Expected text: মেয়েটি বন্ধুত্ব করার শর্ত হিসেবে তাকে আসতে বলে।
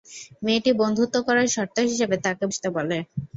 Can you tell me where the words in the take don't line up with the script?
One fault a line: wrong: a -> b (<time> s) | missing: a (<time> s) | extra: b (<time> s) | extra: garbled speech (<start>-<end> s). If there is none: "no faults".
no faults